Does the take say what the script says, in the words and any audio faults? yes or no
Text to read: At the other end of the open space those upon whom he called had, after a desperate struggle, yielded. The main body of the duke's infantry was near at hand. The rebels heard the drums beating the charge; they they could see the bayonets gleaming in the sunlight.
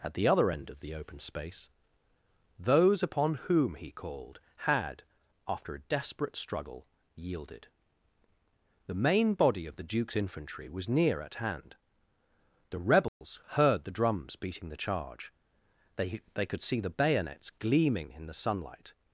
no